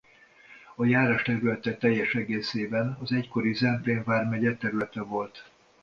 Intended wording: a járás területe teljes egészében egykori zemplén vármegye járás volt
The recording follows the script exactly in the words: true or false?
false